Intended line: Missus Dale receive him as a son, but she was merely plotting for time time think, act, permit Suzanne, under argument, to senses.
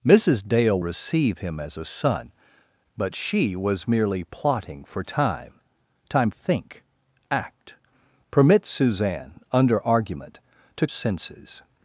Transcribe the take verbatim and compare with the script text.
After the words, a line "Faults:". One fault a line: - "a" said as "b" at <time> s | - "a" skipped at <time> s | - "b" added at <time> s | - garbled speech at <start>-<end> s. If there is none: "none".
Missus Dale receive him as a son, but she was merely plotting for time time think, act, permit Suzanne, under argument, to senses.
Faults:
none